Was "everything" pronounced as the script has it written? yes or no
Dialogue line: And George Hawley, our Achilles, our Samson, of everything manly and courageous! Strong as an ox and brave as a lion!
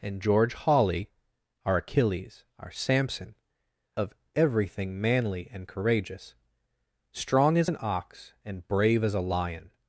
yes